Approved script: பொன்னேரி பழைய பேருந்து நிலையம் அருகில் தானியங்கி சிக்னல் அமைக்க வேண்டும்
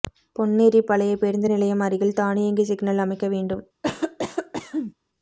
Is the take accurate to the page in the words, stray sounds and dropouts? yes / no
no